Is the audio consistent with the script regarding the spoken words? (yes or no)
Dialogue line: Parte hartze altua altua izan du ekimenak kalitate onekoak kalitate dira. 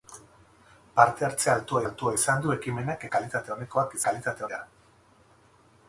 yes